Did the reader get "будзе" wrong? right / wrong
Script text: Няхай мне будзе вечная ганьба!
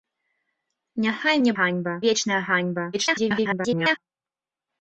wrong